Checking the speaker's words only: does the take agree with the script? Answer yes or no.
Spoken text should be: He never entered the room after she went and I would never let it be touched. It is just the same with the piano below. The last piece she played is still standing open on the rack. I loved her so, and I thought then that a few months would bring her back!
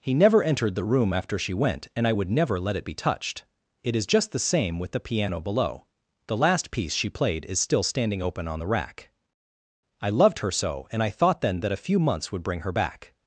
yes